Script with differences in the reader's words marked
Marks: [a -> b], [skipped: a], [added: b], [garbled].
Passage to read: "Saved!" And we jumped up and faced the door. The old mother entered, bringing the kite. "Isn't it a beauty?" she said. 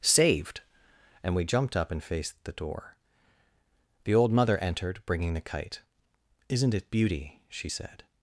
"Saved!" And we jumped up and faced the door. The old mother entered, bringing the kite. "Isn't it [skipped: a] beauty?" she said.